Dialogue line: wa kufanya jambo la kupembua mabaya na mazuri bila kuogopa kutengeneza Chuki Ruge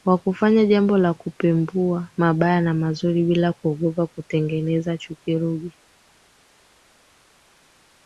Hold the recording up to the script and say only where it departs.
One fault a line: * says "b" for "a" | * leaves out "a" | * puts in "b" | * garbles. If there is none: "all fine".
all fine